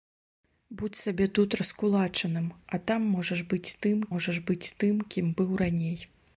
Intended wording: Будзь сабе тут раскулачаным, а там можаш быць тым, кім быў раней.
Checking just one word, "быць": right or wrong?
right